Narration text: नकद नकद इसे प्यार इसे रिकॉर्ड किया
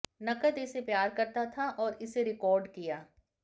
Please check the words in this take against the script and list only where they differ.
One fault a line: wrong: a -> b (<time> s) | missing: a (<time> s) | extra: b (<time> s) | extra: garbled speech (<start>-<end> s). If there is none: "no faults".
missing: नकद (0.6 s)
extra: करता था और (1.1 s)